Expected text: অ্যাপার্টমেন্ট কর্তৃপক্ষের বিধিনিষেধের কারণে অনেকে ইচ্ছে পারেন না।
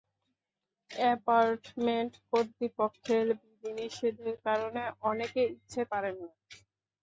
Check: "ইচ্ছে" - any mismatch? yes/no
no